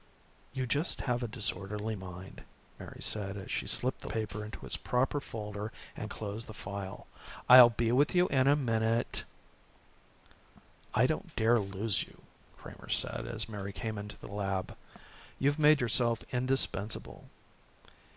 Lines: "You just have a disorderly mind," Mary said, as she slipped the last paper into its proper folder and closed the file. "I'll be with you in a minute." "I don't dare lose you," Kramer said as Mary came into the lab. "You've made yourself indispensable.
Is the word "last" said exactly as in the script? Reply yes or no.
no